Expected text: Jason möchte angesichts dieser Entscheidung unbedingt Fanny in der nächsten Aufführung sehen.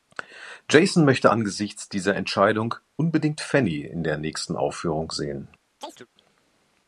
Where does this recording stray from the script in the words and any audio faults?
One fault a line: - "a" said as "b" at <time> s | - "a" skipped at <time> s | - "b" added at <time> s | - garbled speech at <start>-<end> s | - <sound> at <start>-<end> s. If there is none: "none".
- chirp at 5.8-6.1 s